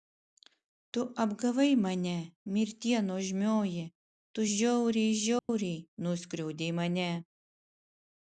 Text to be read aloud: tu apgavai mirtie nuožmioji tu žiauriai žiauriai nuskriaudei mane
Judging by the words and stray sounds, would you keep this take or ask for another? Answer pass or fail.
fail